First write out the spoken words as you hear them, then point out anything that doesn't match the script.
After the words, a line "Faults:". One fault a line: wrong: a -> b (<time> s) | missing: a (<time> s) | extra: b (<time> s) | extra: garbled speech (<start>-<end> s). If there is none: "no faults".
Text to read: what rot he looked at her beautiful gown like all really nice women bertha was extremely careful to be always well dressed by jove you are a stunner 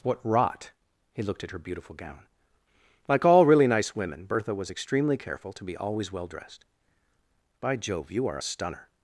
what rot he looked at her beautiful gown like all really nice women bertha was extremely careful to be always well dressed by jove you are a stunner
Faults:
no faults